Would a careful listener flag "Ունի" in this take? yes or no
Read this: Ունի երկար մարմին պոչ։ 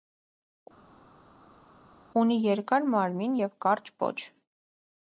no